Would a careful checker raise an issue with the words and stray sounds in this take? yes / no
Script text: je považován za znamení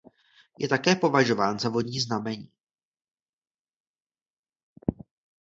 yes